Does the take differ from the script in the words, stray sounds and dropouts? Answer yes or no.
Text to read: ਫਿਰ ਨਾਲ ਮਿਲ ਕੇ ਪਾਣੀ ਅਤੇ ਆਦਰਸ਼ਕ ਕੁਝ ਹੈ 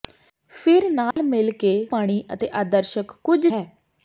yes